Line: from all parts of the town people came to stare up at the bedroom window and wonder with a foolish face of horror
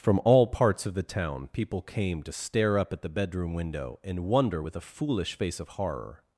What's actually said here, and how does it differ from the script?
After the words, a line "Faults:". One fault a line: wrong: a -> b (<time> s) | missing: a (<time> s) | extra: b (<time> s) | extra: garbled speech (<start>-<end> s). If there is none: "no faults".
from all parts of the town people came to stare up at the bedroom window and wonder with a foolish face of horror
Faults:
no faults